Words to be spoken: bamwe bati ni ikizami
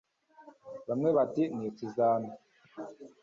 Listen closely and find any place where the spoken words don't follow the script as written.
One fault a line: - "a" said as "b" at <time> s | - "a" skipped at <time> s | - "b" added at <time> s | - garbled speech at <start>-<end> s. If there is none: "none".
none